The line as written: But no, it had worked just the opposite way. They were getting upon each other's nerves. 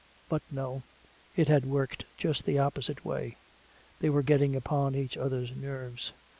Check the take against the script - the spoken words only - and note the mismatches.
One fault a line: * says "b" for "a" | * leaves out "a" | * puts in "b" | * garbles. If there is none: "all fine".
all fine